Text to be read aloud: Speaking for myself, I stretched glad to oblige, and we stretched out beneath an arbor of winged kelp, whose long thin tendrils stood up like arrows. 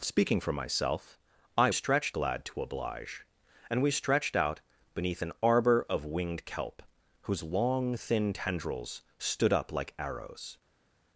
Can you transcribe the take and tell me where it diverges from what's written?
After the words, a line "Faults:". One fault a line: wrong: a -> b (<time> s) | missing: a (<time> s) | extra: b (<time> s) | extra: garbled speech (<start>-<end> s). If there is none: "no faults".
Speaking for myself, I stretched glad to oblige, and we stretched out beneath an arbor of winged kelp, whose long thin tendrils stood up like arrows.
Faults:
no faults